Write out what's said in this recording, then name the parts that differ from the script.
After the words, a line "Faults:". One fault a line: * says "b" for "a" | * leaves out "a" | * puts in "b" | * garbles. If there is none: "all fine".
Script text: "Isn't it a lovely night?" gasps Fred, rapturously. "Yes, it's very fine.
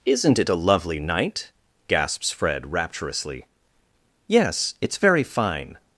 "Isn't it a lovely night?" gasps Fred, rapturously. "Yes, it's very fine.
Faults:
all fine